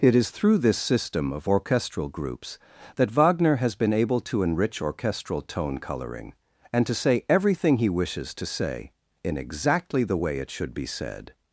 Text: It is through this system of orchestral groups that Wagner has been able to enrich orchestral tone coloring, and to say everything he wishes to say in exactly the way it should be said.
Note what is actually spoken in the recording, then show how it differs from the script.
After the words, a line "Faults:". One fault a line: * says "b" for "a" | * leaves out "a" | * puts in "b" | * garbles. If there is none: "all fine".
It is through this system of orchestral groups that Wagner has been able to enrich orchestral tone coloring, and to say everything he wishes to say in exactly the way it should be said.
Faults:
all fine